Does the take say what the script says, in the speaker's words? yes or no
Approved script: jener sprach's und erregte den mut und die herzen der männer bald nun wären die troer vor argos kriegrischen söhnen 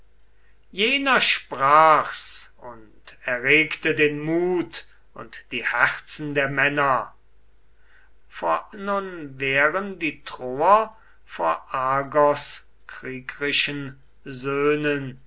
no